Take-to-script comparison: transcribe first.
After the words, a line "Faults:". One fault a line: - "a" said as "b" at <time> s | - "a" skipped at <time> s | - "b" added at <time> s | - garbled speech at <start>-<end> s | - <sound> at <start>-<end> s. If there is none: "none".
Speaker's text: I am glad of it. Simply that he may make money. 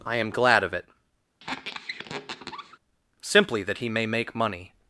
I am glad of it. Simply that he may make money.
Faults:
- squeak at 1.4-2.8 s